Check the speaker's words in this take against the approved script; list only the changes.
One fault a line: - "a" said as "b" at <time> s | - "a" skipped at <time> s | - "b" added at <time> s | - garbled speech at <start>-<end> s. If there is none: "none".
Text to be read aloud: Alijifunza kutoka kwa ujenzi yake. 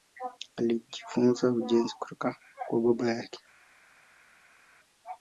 - "ujenzi" added at 1.5 s
- "ujenzi" said as "baba" at 2.8 s